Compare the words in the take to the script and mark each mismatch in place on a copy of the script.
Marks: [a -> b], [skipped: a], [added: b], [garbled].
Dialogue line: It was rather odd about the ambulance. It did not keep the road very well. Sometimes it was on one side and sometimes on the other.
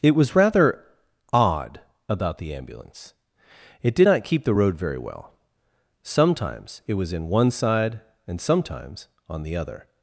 It was rather odd about the ambulance. It did not keep the road very well. Sometimes it was [on -> in] one side and sometimes on the other.